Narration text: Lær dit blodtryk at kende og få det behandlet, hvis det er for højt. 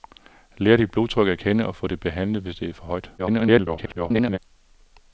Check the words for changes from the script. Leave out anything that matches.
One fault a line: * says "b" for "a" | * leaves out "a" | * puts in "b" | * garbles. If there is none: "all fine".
* garbles